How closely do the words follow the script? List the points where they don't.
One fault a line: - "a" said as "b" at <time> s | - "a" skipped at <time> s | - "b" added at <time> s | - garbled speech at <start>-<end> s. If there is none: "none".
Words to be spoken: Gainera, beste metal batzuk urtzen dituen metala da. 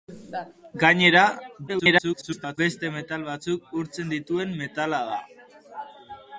- garbled speech at 1.7-2.6 s